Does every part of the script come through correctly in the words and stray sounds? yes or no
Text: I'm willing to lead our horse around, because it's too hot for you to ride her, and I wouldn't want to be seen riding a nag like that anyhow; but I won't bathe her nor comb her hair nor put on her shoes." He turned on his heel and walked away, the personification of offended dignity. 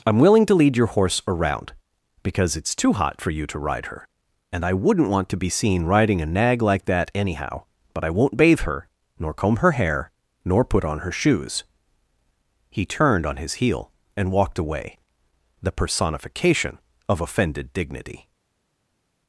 no